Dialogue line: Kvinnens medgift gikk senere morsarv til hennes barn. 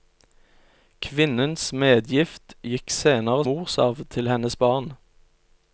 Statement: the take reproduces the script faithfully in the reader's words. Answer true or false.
true